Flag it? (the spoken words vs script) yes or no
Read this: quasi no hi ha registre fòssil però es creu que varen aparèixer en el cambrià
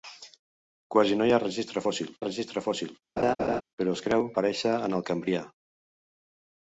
yes